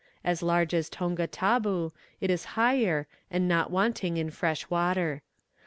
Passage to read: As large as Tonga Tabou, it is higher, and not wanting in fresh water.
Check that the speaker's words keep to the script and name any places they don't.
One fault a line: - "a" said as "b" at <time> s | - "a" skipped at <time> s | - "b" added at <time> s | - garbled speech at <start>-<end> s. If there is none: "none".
none